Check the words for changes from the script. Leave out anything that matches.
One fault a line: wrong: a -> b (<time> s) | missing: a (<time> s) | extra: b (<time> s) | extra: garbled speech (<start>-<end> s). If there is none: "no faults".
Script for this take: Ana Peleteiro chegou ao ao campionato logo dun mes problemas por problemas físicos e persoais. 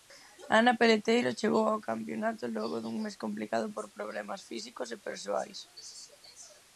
missing: ao (1.8 s)
wrong: problemas -> complicado (3.2 s)